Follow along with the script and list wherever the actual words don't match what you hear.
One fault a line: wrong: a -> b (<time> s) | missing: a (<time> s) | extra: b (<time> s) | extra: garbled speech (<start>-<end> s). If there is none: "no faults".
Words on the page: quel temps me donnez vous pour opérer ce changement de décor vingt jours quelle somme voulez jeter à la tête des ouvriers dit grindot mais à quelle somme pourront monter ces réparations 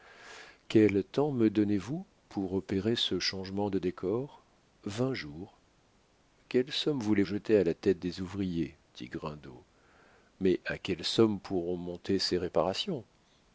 no faults